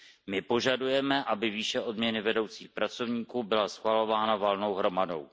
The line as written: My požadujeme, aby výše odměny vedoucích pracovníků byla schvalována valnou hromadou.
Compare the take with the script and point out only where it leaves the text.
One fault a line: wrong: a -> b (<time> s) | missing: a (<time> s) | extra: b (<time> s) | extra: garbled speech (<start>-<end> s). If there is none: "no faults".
no faults